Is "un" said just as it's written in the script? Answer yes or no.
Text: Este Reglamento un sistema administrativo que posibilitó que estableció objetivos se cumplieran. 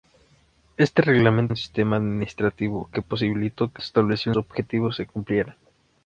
yes